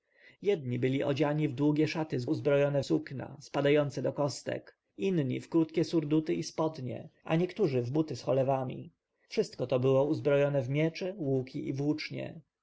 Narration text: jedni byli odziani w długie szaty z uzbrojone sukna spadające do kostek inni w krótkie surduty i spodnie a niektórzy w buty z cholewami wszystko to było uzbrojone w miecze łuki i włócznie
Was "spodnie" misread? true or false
false